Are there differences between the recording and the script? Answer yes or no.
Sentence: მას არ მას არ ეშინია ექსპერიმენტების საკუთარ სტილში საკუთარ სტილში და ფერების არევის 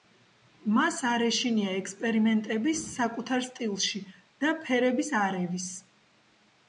yes